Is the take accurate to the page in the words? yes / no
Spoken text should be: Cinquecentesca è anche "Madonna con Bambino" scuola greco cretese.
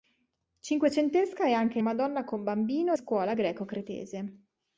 yes